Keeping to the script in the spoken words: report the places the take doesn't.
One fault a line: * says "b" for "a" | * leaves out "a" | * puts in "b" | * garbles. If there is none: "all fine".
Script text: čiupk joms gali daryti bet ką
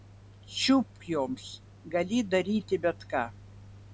all fine